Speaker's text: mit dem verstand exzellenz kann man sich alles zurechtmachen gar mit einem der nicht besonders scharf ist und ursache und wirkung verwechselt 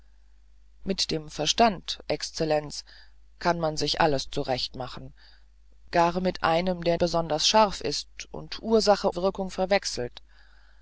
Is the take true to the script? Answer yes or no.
no